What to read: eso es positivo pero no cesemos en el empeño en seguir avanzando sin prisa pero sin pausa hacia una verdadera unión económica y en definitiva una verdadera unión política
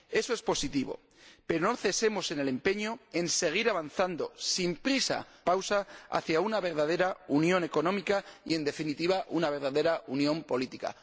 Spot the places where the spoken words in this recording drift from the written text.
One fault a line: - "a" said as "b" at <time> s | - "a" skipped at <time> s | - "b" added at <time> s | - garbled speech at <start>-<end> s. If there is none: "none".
- "pero sin" skipped at 5.3 s